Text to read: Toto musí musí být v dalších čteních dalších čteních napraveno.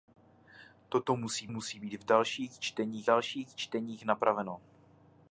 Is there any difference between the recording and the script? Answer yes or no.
no